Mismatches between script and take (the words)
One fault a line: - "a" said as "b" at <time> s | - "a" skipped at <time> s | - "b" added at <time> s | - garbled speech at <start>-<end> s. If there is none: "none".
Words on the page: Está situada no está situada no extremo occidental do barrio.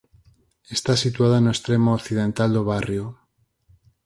- "está situada no" skipped at 1.5 s